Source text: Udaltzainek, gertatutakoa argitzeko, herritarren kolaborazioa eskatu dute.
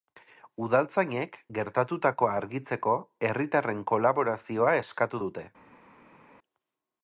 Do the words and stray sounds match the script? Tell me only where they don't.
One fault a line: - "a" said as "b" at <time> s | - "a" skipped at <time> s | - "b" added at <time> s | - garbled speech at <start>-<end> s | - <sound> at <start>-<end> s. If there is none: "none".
none